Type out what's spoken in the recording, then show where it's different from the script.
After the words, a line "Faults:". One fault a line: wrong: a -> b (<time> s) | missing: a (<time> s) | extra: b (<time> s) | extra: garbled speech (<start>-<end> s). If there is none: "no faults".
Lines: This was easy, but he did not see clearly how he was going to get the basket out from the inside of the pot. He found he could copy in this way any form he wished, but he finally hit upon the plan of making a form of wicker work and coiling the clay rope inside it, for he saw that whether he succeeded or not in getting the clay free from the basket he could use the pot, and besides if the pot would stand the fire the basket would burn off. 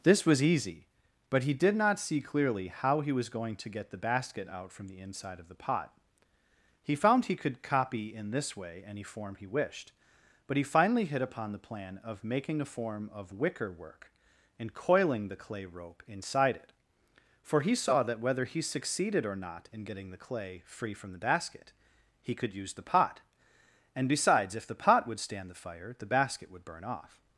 This was easy, but he did not see clearly how he was going to get the basket out from the inside of the pot. He found he could copy in this way any form he wished, but he finally hit upon the plan of making a form of wicker work and coiling the clay rope inside it, for he saw that whether he succeeded or not in getting the clay free from the basket he could use the pot, and besides if the pot would stand the fire the basket would burn off.
Faults:
no faults